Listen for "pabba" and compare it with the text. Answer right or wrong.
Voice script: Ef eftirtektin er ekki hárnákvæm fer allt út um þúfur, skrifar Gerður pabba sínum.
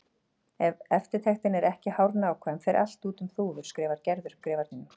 wrong